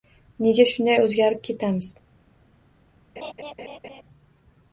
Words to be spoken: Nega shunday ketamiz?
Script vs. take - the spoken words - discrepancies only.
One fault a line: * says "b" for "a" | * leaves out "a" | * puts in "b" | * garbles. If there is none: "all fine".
* puts in "o‘zgarib"